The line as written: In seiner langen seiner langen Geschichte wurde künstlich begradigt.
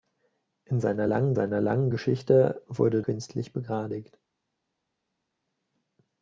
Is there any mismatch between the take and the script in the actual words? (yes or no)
no